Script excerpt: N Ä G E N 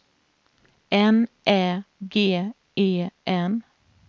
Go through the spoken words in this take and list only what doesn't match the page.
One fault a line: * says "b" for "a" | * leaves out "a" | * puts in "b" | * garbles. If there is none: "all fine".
all fine